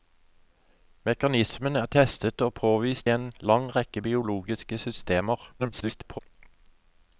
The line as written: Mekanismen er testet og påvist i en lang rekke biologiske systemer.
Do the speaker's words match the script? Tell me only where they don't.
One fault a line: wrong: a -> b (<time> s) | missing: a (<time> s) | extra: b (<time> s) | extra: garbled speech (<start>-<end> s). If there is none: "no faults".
missing: i (3.1 s)
extra: garbled speech (5.6-6.2 s)